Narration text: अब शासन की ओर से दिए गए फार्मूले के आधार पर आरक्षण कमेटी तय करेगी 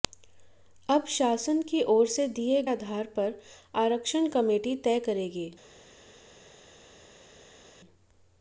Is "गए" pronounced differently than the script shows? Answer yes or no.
yes